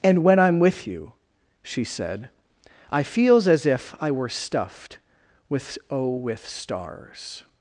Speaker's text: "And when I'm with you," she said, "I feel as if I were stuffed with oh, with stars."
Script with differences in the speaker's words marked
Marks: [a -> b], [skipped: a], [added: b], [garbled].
"And when I'm with you," she said, "I [feel -> feels] as if I were stuffed with oh, with stars."